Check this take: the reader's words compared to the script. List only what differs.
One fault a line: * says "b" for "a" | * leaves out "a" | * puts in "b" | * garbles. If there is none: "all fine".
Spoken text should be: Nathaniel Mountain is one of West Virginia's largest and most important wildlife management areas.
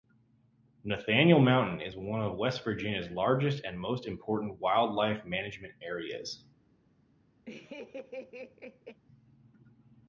all fine